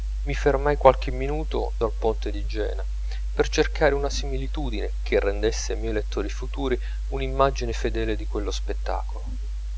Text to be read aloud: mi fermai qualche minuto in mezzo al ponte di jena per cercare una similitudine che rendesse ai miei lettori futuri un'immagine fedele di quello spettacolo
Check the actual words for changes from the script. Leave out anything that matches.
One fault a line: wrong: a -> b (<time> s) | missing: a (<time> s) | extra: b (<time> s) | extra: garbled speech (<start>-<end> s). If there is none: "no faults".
missing: in mezzo (1.8 s)